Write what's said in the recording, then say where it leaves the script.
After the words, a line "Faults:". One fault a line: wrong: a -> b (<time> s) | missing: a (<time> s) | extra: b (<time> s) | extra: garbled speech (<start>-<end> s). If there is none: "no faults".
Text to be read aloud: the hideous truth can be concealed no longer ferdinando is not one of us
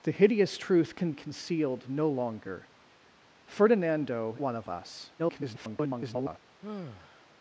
the hideous truth can concealed no longer ferdinando one of us [garbled]
Faults:
missing: be (1.1 s)
missing: is not (4.4 s)
extra: garbled speech (5.2-6.4 s)